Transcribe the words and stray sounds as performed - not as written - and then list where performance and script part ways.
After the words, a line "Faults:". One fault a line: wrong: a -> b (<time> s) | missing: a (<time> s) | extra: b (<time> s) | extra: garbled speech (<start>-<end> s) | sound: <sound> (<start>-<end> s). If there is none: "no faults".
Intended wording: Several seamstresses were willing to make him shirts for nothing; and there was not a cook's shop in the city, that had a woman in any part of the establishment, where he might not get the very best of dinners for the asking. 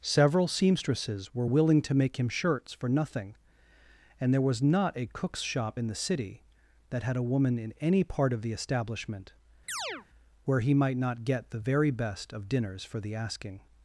Several seamstresses were willing to make him shirts for nothing; and there was not a cook's shop in the city, that had a woman in any part of the establishment, where he might not get the very best of dinners for the asking.
Faults:
sound: chirp (9.7-10.1 s)